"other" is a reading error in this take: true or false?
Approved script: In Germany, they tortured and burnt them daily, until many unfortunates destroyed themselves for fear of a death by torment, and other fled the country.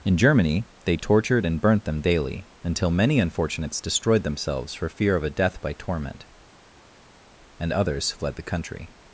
true